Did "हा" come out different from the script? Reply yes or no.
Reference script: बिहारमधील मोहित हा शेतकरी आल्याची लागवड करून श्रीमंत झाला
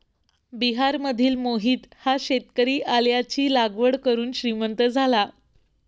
no